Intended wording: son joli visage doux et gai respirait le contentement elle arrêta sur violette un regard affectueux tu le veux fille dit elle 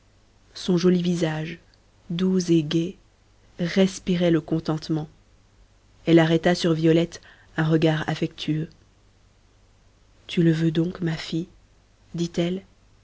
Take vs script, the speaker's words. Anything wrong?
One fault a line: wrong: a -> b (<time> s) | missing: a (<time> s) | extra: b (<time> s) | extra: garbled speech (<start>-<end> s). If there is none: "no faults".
extra: donc ma (10.7 s)